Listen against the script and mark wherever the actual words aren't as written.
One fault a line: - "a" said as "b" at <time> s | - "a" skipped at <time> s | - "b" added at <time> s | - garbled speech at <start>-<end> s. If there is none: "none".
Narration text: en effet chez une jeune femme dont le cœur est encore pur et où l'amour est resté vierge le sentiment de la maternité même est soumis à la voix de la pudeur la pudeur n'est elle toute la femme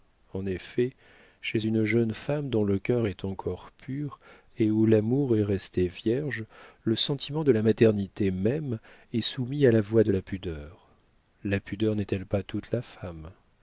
- "pas" added at 12.2 s